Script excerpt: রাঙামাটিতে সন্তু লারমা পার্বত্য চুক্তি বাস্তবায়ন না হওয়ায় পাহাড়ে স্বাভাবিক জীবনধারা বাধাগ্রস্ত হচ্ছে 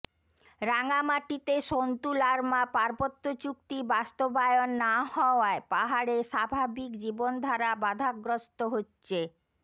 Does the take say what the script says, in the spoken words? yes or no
yes